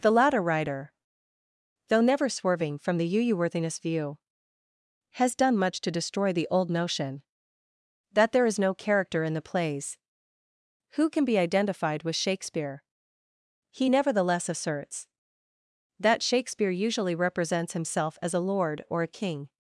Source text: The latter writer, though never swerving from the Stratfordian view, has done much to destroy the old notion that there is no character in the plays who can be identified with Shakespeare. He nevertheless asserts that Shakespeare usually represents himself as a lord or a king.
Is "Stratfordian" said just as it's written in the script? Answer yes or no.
no